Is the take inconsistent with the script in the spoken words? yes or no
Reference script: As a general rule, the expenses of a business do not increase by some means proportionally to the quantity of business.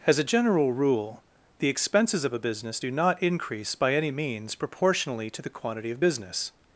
yes